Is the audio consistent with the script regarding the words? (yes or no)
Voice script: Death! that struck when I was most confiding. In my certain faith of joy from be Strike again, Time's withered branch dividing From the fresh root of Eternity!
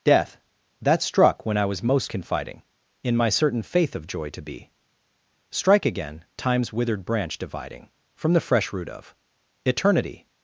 no